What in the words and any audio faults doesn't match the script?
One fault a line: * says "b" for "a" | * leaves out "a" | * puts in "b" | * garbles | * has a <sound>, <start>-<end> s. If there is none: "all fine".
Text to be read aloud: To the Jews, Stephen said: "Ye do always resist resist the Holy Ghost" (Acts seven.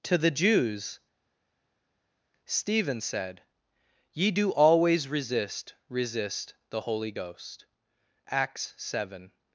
all fine